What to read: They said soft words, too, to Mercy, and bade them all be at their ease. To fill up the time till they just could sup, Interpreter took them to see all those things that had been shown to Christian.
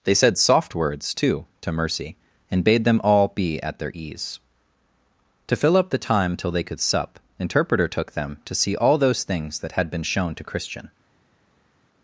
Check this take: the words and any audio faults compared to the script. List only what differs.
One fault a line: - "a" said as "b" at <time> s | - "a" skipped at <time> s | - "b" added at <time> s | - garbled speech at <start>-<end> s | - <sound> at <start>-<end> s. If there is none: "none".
- "just" skipped at 6.6 s